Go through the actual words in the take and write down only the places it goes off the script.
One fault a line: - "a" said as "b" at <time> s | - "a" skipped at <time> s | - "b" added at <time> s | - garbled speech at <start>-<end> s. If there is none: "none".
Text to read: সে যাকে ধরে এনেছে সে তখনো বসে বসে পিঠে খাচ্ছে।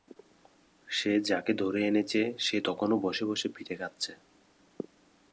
none